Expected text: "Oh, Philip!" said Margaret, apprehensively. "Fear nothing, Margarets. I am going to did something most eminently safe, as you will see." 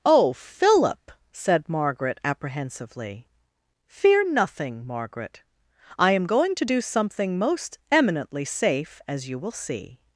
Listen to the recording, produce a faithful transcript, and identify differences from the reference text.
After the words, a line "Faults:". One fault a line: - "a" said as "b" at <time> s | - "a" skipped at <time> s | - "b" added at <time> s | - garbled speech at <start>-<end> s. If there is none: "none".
"Oh, Philip!" said Margaret, apprehensively. "Fear nothing, Margaret. I am going to do something most eminently safe, as you will see."
Faults:
- "Margarets" said as "Margaret" at 4.8 s
- "did" said as "do" at 6.6 s